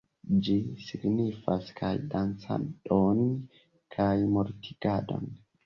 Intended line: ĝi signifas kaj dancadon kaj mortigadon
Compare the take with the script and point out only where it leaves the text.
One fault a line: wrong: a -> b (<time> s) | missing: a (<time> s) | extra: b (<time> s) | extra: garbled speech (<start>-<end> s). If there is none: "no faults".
no faults